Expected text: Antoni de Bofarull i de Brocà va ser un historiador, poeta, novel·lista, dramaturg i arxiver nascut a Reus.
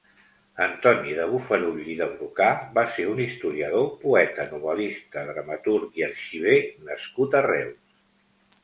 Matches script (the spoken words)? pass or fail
pass